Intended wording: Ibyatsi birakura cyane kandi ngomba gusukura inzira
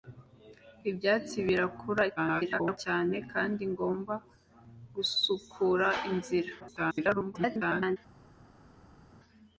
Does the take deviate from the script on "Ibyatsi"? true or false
false